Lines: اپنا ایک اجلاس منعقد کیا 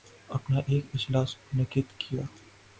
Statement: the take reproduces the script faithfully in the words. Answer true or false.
true